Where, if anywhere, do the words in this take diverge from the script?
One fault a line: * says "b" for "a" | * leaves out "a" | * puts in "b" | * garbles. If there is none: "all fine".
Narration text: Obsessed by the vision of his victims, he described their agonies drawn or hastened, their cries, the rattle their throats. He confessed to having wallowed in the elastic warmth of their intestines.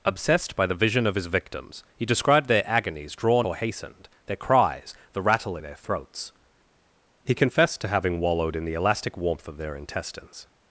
all fine